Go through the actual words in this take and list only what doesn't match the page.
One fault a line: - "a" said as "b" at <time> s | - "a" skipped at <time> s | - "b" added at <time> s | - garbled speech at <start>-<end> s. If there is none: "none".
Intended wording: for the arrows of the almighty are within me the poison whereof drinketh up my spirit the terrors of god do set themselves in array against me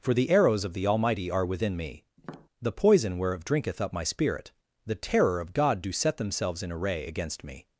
- "terrors" said as "terror" at 4.9 s